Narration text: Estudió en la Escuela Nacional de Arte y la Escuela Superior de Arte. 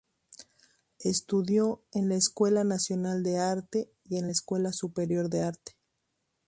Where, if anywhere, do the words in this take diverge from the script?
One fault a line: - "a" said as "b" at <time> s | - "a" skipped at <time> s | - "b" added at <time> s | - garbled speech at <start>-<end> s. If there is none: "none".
- "en" added at 4.2 s